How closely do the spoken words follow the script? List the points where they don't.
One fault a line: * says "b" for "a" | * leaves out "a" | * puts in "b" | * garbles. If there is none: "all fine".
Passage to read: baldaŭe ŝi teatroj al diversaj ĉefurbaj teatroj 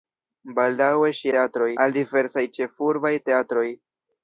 all fine